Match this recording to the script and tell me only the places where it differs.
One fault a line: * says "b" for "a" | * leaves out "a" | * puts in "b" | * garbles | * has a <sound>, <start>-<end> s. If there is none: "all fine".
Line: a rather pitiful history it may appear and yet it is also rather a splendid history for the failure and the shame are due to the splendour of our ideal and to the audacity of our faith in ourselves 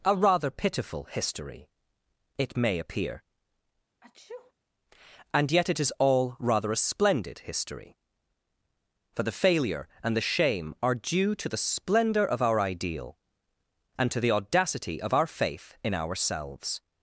* has a sneeze, 4.0-4.5 s
* says "all" for "also"